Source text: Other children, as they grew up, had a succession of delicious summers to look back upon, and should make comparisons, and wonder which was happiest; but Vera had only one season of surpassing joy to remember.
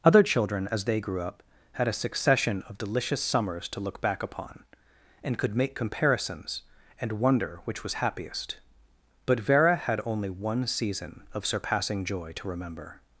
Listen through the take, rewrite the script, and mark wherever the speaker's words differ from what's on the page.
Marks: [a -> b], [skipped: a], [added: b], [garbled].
Other children, as they grew up, had a succession of delicious summers to look back upon, and [should -> could] make comparisons, and wonder which was happiest; but Vera had only one season of surpassing joy to remember.